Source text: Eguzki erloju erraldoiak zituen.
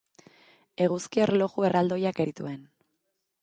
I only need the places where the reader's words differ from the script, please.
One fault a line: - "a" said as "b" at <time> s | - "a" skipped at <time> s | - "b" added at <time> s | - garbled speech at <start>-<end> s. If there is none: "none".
none